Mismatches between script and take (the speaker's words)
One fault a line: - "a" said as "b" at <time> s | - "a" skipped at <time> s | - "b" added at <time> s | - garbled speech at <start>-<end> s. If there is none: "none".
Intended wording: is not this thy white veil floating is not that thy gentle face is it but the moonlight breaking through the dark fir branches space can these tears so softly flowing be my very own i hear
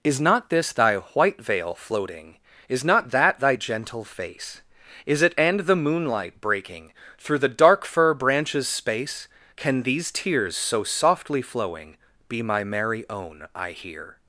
- "but" said as "and" at 5.4 s
- "very" said as "merry" at 12.6 s